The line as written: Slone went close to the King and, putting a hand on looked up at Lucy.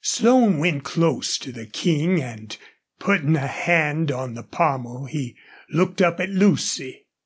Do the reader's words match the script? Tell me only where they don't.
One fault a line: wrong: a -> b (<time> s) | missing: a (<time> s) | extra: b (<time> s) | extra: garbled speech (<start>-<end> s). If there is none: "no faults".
extra: the pommel he (4.3 s)